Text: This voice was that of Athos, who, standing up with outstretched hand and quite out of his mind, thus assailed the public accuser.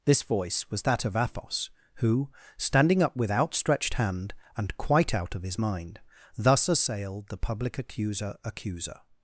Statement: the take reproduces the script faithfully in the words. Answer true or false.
false